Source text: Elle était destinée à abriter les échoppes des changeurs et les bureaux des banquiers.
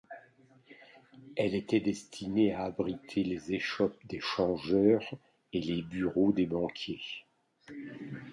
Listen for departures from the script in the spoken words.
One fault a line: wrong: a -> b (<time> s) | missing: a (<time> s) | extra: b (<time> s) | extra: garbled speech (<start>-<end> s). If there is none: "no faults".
no faults